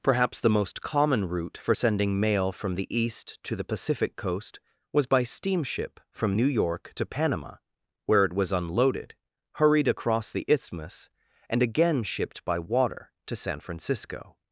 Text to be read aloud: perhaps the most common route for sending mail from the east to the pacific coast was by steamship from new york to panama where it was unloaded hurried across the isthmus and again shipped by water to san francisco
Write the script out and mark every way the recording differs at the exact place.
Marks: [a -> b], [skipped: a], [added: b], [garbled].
perhaps the most common route for sending mail from the east to the pacific coast was by steamship from new york to panama where it was unloaded hurried across the isthmus and again shipped by water to san francisco